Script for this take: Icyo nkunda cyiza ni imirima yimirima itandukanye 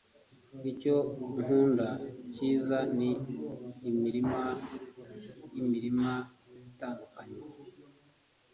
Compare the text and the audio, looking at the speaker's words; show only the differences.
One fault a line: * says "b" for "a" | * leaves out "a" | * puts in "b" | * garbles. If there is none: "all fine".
all fine